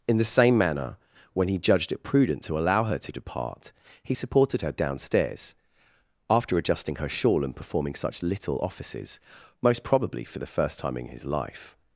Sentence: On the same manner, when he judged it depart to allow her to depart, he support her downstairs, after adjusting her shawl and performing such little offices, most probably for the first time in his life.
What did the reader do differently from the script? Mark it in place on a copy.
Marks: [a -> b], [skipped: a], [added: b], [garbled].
[On -> In] the same manner, when he judged it [depart -> prudent] to allow her to depart, he [support -> supported] her downstairs, after adjusting her shawl and performing such little offices, most probably for the first time in his life.